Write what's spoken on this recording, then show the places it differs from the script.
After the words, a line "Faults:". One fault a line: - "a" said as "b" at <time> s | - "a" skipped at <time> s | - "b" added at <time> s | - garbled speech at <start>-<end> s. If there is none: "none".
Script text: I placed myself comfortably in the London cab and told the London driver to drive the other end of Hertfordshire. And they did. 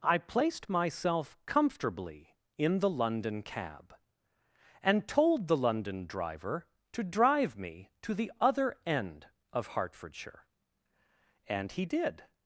I placed myself comfortably in the London cab and told the London driver to drive me to the other end of Hertfordshire. And he did.
Faults:
- "me to" added at 7.5 s
- "they" said as "he" at 11.7 s